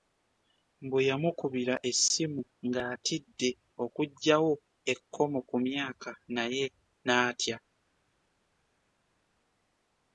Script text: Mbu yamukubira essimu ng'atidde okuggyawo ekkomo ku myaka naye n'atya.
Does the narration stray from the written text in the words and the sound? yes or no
no